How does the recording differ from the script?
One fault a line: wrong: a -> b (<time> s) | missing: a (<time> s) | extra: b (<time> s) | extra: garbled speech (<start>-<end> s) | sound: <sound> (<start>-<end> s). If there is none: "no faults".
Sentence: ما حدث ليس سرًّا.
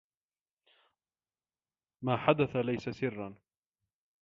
no faults